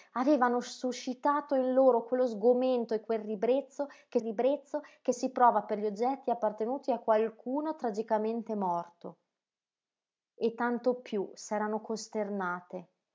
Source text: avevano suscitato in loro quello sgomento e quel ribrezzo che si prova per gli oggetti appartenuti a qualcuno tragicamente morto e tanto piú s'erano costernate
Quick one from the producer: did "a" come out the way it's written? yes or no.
yes